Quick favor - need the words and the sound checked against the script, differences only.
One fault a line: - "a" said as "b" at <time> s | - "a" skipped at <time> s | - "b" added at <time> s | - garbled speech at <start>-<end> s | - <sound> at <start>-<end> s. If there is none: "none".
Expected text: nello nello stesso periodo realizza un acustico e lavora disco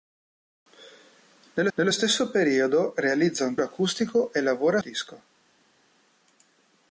none